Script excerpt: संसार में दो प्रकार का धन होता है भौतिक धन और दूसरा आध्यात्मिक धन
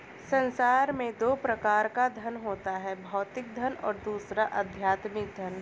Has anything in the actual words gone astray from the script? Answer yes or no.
no